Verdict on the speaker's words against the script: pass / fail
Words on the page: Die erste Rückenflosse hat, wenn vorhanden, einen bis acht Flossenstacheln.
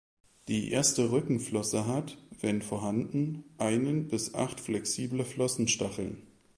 fail